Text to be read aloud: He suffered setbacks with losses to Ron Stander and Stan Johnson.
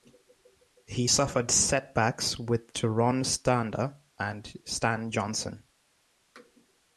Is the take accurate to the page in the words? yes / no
no